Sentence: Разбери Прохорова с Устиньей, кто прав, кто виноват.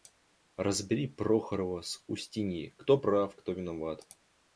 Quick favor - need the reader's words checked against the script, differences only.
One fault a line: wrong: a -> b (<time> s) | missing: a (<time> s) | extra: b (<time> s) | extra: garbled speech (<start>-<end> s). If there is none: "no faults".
no faults